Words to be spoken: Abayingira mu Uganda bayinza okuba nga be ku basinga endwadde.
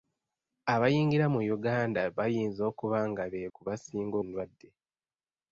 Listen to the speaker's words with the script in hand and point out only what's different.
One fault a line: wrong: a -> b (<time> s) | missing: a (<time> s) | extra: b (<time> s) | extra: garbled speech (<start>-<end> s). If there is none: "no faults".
no faults